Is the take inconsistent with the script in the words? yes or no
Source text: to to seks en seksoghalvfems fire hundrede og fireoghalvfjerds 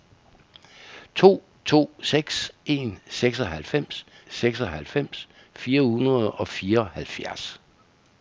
yes